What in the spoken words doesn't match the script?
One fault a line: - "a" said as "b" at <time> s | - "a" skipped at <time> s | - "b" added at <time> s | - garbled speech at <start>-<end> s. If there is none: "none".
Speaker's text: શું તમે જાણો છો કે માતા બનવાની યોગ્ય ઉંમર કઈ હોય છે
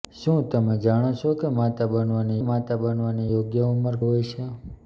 - "માતા બનવાની" added at 2.4 s
- "કઈ" skipped at 3.9 s